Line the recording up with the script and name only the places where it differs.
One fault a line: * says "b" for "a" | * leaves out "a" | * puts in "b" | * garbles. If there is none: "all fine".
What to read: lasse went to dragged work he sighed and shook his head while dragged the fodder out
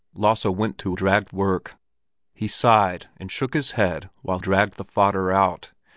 all fine